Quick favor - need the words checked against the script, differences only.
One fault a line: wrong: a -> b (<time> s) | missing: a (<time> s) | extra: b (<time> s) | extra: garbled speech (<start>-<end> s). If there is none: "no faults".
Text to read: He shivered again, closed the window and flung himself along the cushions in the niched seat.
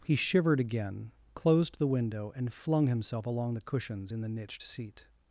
no faults